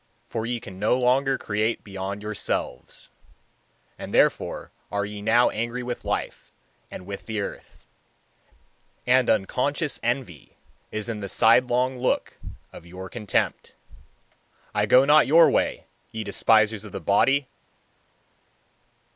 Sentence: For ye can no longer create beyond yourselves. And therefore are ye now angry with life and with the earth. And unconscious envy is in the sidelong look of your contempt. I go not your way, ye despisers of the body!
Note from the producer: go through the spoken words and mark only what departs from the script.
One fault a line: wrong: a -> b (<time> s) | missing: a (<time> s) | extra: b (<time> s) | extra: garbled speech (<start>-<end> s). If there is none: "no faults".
no faults